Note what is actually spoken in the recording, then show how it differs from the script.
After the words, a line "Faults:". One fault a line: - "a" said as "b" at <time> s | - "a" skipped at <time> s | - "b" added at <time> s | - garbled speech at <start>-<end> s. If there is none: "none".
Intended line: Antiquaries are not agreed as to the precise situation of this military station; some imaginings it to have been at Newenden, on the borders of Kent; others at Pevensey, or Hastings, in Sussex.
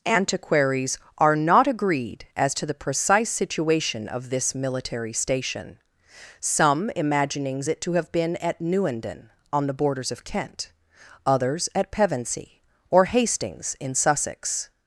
Antiquaries are not agreed as to the precise situation of this military station; some imaginings it to have been at Newenden, on the borders of Kent; others at Pevensey, or Hastings, in Sussex.
Faults:
none